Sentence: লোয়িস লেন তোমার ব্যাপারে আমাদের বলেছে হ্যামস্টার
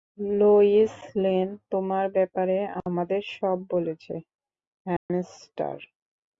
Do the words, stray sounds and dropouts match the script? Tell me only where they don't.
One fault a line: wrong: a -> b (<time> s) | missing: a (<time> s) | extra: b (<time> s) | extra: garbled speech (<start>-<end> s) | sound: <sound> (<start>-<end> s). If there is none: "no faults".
extra: সব (3.4 s)
sound: dropout (5.0-5.1 s)